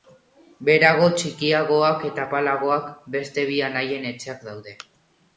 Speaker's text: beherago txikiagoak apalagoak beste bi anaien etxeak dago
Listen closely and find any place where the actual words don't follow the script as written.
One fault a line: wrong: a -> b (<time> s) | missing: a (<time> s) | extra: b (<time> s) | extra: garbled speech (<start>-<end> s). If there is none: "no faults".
extra: eta (2.1 s)
wrong: dago -> daude (4.5 s)